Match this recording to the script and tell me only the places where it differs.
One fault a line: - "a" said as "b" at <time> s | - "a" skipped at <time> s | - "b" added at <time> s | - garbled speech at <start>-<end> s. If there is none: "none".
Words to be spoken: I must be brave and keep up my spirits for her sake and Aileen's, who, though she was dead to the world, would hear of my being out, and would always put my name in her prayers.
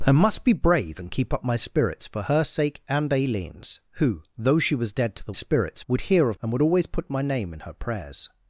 - "world" said as "spirits" at 5.3 s
- "my being out" skipped at 6.4 s